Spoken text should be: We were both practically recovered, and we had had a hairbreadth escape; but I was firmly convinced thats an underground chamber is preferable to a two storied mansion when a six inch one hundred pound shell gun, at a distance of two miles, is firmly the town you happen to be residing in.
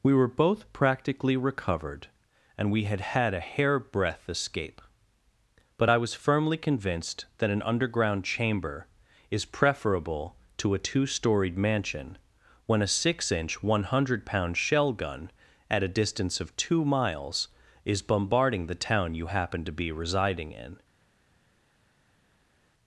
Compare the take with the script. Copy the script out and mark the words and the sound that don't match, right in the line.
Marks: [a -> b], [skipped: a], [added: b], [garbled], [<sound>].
We were both practically recovered, and we had had a hairbreadth escape; but I was firmly convinced [thats -> that] an underground chamber is preferable to a two storied mansion when a six inch one hundred pound shell gun, at a distance of two miles, is [firmly -> bombarding] the town you happen to be residing in.